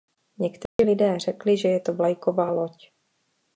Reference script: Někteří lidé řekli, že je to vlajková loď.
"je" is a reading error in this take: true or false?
false